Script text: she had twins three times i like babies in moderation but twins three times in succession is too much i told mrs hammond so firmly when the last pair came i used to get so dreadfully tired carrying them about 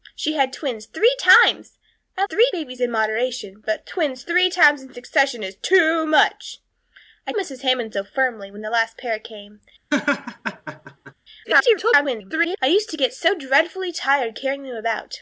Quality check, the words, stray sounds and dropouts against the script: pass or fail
fail